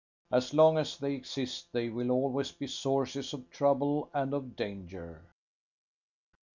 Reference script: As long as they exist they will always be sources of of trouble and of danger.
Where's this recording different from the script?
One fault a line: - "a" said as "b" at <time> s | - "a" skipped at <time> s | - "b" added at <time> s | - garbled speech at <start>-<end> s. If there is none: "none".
- "of" skipped at 3.5 s